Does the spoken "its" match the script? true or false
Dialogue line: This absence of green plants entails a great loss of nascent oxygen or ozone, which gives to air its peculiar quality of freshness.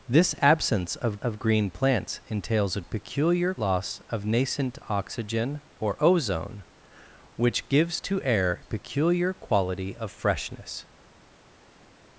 false